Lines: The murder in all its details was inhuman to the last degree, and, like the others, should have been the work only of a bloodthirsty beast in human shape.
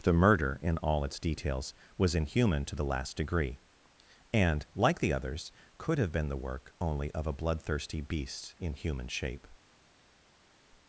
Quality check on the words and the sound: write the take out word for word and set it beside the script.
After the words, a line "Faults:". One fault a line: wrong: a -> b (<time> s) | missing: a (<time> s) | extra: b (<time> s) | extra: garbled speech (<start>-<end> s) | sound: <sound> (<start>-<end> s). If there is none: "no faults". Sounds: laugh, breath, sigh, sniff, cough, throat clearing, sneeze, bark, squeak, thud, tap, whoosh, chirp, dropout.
The murder in all its details was inhuman to the last degree, and, like the others, could have been the work only of a bloodthirsty beast in human shape.
Faults:
wrong: should -> could (5.8 s)